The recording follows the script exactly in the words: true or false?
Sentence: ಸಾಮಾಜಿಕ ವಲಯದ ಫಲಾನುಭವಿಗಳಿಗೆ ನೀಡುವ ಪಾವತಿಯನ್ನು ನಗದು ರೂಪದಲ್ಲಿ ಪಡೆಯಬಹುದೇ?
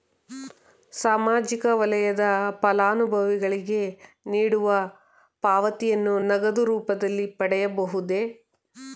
true